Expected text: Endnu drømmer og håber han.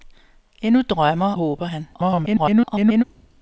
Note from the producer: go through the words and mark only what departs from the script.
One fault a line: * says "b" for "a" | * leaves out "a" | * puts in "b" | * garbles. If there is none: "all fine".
* leaves out "og"
* garbles